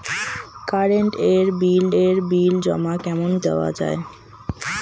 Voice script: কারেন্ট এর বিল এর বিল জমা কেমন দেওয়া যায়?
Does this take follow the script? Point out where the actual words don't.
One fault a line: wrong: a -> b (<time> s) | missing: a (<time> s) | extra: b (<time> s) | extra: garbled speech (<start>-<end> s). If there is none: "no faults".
no faults